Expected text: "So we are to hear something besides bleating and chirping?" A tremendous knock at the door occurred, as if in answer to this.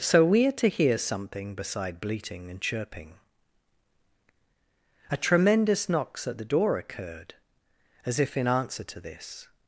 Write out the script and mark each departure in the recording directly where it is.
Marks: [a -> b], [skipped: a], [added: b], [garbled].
"So we are to hear something [besides -> beside] bleating and chirping?" A tremendous [knock -> knocks] at the door occurred, as if in answer to this.